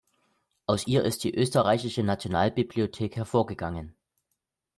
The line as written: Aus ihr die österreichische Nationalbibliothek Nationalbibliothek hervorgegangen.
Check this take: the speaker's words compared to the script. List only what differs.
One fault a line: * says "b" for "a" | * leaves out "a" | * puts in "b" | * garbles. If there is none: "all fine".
* puts in "ist"
* leaves out "Nationalbibliothek"